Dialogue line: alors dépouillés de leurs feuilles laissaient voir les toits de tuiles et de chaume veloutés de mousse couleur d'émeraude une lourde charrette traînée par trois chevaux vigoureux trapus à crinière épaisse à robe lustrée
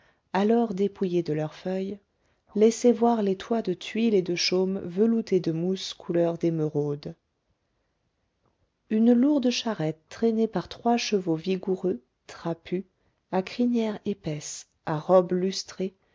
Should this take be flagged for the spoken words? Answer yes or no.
no